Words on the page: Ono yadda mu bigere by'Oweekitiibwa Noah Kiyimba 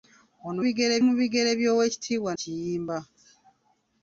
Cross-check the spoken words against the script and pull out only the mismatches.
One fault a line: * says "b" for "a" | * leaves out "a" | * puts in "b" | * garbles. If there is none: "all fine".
* says "bigere" for "yadda"
* leaves out "Noah"